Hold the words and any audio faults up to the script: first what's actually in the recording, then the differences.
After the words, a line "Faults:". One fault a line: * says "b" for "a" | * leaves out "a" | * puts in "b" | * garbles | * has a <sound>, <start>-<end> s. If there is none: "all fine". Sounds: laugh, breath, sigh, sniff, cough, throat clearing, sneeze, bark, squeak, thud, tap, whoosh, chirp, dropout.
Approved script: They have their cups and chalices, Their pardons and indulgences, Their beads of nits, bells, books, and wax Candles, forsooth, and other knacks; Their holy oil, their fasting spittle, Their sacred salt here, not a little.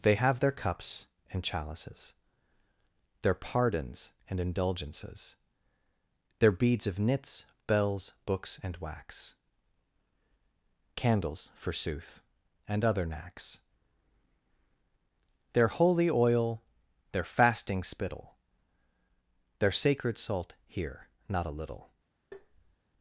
They have their cups and chalices, Their pardons and indulgences, Their beads of nits, bells, books, and wax Candles, forsooth, and other knacks; Their holy oil, their fasting spittle, Their sacred salt here, not a little.
Faults:
* has a tap, 22.3-22.8 s